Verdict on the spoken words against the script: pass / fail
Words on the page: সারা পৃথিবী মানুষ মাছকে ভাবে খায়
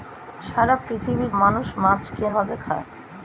pass